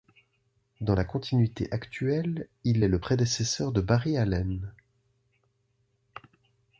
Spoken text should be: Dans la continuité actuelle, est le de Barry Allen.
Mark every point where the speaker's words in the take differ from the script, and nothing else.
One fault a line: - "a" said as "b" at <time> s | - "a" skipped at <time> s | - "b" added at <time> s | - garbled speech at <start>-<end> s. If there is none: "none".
- "il" added at 2.6 s
- "prédécesseur" added at 3.0 s